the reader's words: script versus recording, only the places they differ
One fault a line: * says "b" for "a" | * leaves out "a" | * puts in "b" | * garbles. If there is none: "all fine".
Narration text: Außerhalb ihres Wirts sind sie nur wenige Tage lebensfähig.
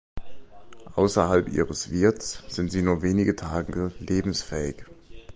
all fine